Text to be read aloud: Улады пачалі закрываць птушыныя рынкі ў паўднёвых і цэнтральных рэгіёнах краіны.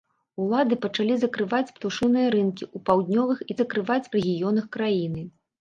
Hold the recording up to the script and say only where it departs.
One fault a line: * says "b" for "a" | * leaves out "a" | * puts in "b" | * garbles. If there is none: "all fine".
* says "закрываць" for "цэнтральных"